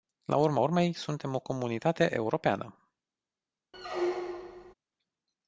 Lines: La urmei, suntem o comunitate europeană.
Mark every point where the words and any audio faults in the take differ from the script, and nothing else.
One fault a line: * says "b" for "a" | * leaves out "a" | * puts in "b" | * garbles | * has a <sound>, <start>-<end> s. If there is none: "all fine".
* puts in "urma"
* has a squeak, 3.7-4.7 s